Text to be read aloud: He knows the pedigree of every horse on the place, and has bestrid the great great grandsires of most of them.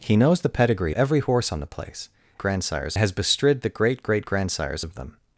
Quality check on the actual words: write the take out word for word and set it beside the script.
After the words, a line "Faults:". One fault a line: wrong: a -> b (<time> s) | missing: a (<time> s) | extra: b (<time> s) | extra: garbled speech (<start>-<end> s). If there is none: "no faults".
He knows the pedigree every horse on the place, grandsires has bestrid the great great grandsires of of them.
Faults:
missing: of (0.9 s)
wrong: and -> grandsires (2.4 s)
missing: most (4.9 s)